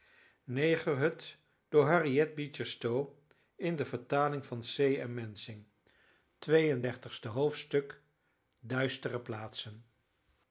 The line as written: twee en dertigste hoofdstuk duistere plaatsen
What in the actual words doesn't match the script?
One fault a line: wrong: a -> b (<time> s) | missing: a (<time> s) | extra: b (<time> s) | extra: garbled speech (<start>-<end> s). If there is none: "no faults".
no faults